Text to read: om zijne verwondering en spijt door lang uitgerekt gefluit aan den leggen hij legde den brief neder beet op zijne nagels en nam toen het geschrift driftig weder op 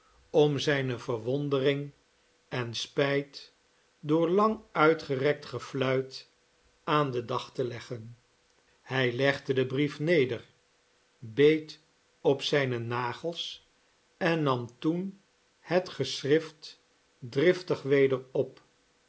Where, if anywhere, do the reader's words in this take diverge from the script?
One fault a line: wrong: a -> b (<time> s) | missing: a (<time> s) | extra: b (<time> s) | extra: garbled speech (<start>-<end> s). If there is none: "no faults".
extra: dag te (7.3 s)